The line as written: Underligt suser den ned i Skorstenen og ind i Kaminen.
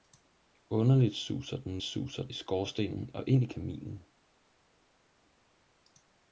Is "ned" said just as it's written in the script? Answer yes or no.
no